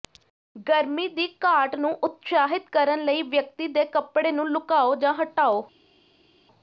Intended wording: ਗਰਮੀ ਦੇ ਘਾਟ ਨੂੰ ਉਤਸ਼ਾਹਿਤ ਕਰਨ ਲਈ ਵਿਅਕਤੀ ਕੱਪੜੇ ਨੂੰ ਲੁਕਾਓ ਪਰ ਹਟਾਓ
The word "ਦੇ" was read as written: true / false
false